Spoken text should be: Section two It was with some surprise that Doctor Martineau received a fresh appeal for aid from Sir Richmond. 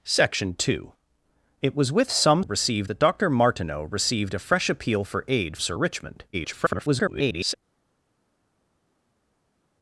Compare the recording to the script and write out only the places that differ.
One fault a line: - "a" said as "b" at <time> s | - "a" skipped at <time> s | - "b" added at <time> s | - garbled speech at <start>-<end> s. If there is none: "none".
- "surprise" said as "received" at 2.4 s
- "from" skipped at 5.6 s
- garbled speech at 6.3-7.5 s